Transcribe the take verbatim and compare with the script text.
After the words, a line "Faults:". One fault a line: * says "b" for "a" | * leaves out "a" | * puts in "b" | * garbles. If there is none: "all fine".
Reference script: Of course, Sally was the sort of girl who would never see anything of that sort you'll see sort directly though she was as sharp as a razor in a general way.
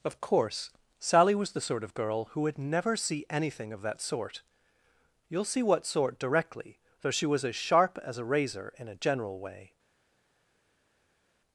Of course, Sally was the sort of girl who would never see anything of that sort you'll see what sort directly though she was as sharp as a razor in a general way.
Faults:
* puts in "what"